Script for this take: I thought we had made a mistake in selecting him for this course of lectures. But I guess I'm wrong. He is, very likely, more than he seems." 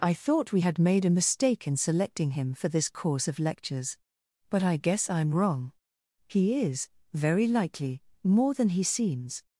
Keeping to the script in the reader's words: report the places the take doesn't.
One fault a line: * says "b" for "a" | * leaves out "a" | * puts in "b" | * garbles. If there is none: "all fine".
all fine